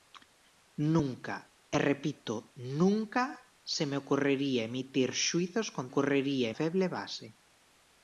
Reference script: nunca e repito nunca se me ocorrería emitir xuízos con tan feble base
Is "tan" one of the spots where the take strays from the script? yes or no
yes